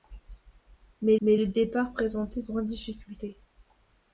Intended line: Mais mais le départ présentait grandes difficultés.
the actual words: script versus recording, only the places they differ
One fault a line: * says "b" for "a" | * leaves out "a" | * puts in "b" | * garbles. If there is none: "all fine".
all fine